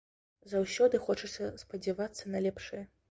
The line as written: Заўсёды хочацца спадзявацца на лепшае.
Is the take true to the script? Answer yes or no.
yes